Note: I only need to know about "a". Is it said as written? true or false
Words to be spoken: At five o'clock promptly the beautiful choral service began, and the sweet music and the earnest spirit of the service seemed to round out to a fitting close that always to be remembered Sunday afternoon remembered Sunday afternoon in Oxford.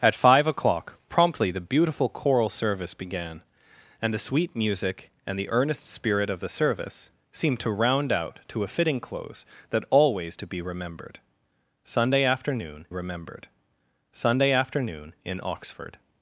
true